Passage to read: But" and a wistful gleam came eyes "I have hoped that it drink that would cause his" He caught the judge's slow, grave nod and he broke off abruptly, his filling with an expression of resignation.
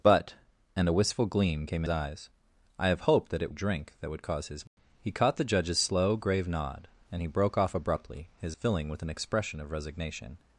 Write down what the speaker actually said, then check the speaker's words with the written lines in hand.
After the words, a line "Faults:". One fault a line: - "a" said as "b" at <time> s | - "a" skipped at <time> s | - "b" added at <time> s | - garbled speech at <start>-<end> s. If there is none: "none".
But" and a wistful gleam came eyes "I have hoped that it drink that would cause his" He caught the judge's slow, grave nod and he broke off abruptly, his filling with an expression of resignation.
Faults:
none